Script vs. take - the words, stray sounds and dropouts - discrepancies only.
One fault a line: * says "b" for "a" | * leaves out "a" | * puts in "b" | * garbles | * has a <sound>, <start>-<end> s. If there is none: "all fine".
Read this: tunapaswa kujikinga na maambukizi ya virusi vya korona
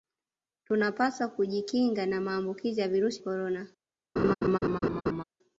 * leaves out "vya"
* has a laugh, 4.2-5.2 s